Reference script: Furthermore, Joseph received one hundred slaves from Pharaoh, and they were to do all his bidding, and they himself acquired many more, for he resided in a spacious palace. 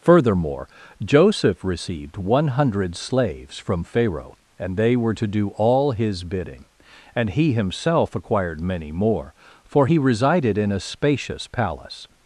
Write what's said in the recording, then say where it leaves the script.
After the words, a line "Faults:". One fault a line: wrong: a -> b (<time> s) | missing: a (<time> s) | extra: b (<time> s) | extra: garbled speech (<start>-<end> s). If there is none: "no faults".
Furthermore, Joseph received one hundred slaves from Pharaoh, and they were to do all his bidding, and he himself acquired many more, for he resided in a spacious palace.
Faults:
wrong: they -> he (7.3 s)